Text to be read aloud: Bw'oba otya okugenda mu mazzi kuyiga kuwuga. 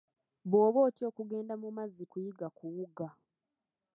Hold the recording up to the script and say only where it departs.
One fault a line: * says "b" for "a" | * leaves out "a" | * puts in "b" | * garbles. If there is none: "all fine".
all fine